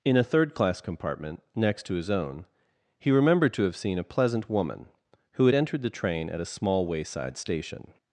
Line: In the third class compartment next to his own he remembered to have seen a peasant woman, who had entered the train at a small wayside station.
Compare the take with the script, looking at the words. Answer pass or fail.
fail